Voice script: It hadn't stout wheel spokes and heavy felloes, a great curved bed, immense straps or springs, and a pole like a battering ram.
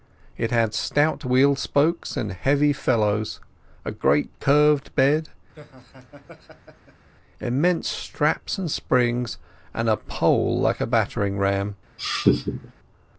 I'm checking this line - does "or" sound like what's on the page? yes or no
no